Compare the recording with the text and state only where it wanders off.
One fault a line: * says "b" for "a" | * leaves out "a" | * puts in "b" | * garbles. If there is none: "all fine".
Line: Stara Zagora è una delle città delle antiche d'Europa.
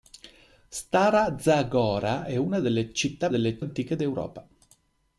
all fine